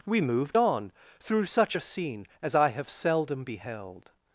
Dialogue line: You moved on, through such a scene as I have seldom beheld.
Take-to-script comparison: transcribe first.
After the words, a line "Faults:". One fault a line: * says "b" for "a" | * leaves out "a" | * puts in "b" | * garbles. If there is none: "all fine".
We moved on, through such a scene as I have seldom beheld.
Faults:
* says "We" for "You"